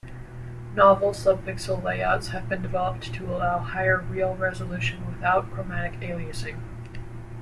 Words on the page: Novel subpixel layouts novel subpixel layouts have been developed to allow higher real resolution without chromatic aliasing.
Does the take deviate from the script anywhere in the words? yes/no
yes